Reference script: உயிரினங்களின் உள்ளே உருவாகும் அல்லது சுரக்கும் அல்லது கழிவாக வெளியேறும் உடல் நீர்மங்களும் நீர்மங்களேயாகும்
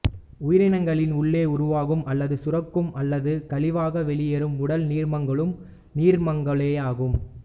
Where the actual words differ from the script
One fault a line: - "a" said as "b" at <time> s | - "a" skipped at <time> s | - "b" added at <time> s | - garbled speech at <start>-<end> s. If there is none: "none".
none